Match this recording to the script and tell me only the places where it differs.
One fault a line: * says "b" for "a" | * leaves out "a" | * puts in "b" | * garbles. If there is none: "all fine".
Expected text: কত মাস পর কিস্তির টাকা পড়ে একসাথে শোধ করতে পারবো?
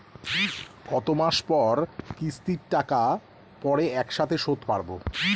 * leaves out "করতে"